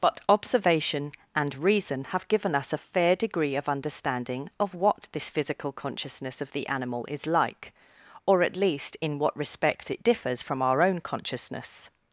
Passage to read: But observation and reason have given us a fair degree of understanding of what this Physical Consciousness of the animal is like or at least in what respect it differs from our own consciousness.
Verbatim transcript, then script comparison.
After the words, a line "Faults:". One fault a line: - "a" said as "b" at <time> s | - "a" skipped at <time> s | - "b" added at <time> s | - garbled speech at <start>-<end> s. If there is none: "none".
But observation and reason have given us a fair degree of understanding of what this Physical Consciousness of the animal is like or at least in what respect it differs from our own consciousness.
Faults:
none